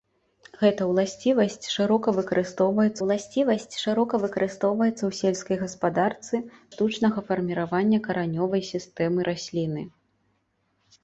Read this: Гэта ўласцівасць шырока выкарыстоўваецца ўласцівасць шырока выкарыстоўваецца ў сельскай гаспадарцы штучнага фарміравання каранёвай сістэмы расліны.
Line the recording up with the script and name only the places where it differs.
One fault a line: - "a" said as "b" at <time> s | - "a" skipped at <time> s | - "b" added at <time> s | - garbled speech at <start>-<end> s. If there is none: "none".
none